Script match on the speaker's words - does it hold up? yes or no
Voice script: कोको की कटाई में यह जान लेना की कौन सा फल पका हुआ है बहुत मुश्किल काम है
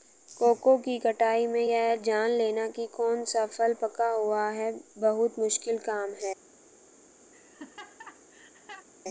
yes